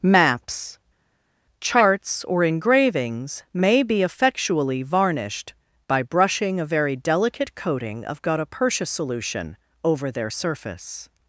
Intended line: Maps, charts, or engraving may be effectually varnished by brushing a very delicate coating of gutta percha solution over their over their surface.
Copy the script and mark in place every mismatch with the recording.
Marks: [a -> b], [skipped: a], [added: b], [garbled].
Maps, charts, or [engraving -> engravings] may be effectually varnished by brushing a very delicate coating of gutta percha solution over their [skipped: over their] surface.